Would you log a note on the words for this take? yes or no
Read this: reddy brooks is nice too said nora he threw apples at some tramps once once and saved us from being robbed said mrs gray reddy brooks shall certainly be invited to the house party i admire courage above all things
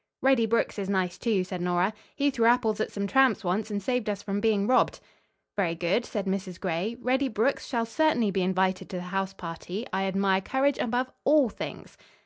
yes